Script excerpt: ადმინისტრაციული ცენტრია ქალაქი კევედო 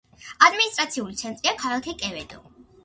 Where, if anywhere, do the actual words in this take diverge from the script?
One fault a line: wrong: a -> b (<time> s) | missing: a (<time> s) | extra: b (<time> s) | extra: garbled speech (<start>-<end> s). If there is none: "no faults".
no faults